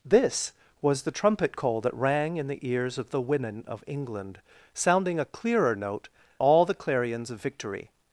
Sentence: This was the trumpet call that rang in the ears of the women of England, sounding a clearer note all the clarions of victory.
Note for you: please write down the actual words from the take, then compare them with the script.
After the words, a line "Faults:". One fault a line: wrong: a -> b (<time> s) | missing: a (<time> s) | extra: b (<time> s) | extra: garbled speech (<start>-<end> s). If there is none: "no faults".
This was the trumpet call that rang in the ears of the women of England, sounding a clearer note all the clarions of victory.
Faults:
no faults